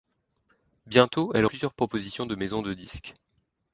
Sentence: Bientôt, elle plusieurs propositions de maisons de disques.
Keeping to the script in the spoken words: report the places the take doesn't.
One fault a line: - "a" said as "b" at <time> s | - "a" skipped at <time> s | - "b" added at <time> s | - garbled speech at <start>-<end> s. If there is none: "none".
none